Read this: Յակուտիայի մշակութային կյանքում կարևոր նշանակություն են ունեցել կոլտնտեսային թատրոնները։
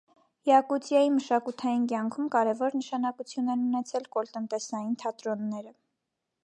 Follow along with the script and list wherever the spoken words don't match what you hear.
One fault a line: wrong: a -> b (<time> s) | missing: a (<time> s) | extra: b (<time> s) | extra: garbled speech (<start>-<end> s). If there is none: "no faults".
no faults